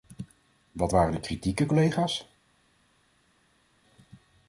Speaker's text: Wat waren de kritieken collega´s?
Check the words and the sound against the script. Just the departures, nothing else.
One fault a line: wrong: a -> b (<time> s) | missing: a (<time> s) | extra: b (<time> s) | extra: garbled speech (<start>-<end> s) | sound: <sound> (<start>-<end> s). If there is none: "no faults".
no faults